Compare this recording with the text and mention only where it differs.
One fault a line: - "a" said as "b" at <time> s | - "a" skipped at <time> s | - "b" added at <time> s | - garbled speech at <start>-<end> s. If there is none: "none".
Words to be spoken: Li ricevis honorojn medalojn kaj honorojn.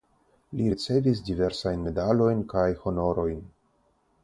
- "honorojn" said as "diversajn" at 1.3 s